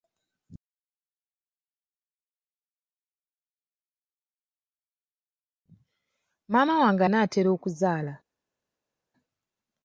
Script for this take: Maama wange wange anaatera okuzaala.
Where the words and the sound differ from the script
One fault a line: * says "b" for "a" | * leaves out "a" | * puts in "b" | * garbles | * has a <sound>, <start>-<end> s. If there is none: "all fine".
* leaves out "wange"